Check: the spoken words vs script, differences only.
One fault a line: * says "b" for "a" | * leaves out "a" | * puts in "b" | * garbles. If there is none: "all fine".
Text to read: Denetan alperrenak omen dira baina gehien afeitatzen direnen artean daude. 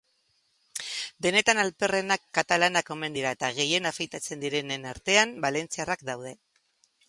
* puts in "katalanak"
* says "eta" for "baina"
* puts in "valentziarrak"